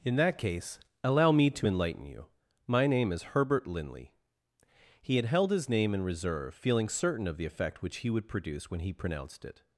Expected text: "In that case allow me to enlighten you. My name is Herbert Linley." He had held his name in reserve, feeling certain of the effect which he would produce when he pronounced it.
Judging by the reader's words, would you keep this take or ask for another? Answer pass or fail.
pass